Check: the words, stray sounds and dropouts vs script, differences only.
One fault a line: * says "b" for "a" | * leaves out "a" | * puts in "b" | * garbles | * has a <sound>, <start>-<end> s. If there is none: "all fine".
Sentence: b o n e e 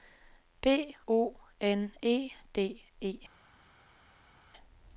* puts in "d"